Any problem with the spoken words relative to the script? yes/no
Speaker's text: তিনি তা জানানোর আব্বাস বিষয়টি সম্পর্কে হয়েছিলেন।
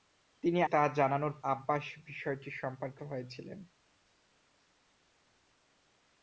no